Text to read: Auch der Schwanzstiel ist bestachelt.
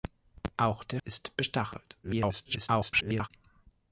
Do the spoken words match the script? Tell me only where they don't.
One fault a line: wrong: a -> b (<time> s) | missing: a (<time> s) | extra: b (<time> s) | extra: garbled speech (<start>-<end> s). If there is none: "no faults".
missing: Schwanzstiel (1.0 s)
extra: garbled speech (2.0-3.3 s)